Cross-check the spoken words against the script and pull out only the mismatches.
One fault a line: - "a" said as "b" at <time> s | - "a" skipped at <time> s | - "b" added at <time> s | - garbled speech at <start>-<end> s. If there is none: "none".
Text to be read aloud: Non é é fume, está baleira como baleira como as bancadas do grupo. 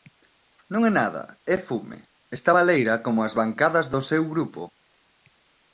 - "nada" added at 1.0 s
- "baleira como" skipped at 3.2 s
- "seu" added at 4.1 s